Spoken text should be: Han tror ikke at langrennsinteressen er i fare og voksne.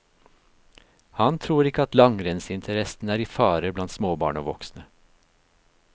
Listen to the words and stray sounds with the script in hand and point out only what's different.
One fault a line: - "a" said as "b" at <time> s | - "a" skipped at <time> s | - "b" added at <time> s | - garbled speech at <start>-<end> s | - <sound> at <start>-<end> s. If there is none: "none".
- "blant småbarn" added at 3.8 s